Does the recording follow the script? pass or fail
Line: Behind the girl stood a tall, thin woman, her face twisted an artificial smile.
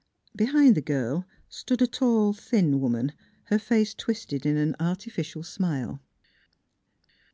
fail